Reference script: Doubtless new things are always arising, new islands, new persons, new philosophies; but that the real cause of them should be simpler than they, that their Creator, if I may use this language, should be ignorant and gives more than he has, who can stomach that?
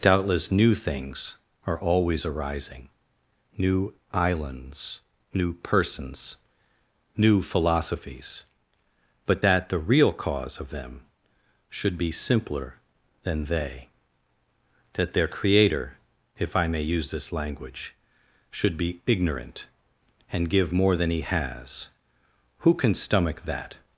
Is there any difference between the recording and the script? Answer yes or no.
yes